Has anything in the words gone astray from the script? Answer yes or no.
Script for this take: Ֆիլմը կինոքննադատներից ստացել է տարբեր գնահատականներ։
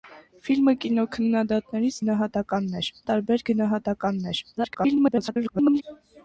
yes